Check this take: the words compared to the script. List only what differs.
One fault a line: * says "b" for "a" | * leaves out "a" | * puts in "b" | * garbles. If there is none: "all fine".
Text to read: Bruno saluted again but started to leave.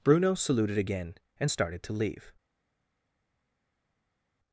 * says "and" for "but"